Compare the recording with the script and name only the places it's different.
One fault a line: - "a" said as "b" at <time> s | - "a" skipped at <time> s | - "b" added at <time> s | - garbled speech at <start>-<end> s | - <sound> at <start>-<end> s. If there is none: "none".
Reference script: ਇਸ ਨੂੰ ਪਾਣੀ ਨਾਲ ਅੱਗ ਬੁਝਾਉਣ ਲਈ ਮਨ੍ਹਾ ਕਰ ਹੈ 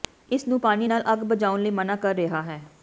- "ਰਿਹਾ" added at 2.1 s